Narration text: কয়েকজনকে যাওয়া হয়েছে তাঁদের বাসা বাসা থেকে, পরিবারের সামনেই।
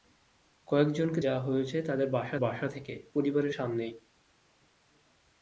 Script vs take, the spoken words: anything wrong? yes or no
no